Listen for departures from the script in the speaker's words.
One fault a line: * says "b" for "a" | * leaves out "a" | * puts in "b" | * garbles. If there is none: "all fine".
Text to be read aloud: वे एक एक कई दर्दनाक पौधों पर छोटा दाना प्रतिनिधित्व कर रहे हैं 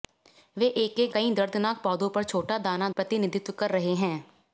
all fine